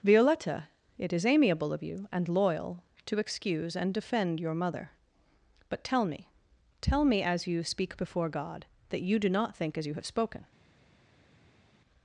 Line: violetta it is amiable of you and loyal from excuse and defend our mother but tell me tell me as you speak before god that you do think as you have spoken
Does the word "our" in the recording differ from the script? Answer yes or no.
yes